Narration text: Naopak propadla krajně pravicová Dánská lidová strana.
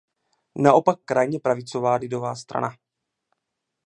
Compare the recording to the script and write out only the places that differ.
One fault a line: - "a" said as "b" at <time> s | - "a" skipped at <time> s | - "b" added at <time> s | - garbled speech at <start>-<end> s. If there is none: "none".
- "propadla" skipped at 1.0 s
- "Dánská" skipped at 2.0 s